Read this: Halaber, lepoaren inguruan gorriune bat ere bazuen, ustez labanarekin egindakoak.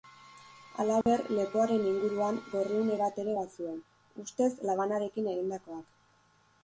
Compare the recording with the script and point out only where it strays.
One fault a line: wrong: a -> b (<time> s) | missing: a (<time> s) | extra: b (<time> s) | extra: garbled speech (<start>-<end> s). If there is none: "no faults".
no faults